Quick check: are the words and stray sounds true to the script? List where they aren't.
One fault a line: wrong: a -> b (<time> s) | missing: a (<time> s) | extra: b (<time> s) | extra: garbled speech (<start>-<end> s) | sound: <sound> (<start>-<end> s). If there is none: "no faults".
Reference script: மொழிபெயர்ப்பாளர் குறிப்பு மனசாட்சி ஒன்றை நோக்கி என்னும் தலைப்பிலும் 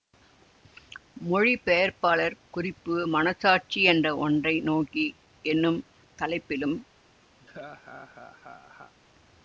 extra: என்ற (3.9 s)
sound: laugh (7.4-8.9 s)